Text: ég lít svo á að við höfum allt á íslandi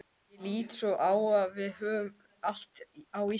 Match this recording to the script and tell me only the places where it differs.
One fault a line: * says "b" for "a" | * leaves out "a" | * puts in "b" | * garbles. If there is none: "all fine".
all fine